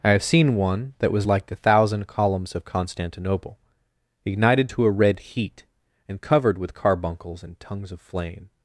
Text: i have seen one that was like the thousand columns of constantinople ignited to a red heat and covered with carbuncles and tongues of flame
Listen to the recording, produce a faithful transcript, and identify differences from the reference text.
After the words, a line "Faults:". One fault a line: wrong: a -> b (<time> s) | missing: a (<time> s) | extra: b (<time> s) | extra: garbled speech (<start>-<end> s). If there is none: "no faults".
i have seen one that was like the thousand columns of constantinople ignited to a red heat and covered with carbuncles and tongues of flame
Faults:
no faults